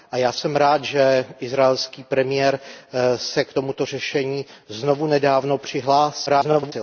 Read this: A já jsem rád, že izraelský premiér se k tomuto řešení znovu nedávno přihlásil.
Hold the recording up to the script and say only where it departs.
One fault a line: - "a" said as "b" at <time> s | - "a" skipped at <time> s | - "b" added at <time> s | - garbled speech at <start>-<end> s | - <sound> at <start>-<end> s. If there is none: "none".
- garbled speech at 6.3-6.7 s